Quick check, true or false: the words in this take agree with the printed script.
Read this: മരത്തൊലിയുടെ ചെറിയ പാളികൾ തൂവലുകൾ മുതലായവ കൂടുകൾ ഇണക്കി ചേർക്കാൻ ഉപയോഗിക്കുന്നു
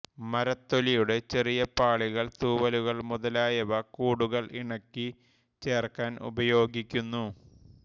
true